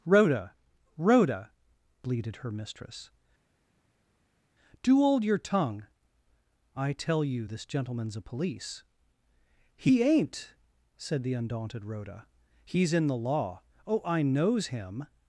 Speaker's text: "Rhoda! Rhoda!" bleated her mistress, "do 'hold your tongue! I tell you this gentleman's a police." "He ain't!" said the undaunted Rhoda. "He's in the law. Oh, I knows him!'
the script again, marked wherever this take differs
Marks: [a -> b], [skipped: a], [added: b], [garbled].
"Rhoda! Rhoda!" bleated her mistress, "do 'hold your tongue! I tell you this gentleman's a police." "He ain't!" said the undaunted Rhoda. "He's in the law. Oh, I knows him!'